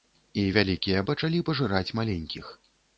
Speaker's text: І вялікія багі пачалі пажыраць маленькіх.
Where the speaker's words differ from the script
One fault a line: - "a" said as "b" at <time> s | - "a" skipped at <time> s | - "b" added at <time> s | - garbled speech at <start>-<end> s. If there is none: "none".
- "багі" skipped at 1.0 s